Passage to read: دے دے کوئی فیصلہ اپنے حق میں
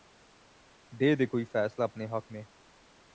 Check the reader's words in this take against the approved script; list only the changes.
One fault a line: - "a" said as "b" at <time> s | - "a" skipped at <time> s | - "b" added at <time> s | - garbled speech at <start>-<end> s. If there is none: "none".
none